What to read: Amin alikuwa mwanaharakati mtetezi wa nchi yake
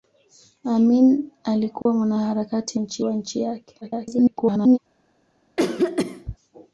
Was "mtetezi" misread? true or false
true